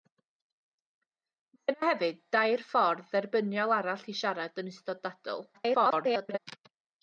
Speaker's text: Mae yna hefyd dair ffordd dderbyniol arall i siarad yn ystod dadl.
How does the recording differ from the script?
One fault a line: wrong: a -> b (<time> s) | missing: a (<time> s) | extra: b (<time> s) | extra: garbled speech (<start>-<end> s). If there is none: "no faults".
extra: garbled speech (5.5-6.4 s)